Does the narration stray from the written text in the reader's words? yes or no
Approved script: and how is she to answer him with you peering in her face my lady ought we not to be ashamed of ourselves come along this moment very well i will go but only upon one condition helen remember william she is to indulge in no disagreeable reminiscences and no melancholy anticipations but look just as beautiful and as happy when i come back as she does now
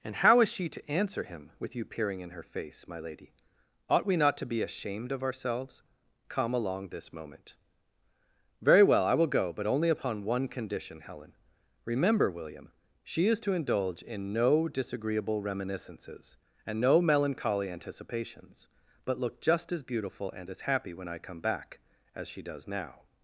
no